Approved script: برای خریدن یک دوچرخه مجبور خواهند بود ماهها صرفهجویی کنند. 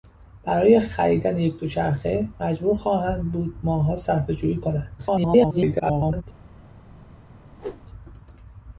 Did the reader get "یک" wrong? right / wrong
right